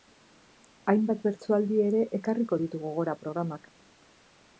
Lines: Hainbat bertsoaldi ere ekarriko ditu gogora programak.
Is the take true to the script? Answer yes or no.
yes